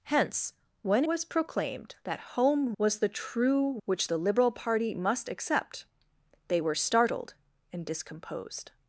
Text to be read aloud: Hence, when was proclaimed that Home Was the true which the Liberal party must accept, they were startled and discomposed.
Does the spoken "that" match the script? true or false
true